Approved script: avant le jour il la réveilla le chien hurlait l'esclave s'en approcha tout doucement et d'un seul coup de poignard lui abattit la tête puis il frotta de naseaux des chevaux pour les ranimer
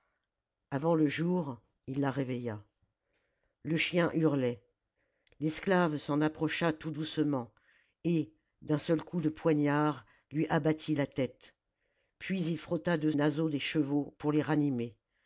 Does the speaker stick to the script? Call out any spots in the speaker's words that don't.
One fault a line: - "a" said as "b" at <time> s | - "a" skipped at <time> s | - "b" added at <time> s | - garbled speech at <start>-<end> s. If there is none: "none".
none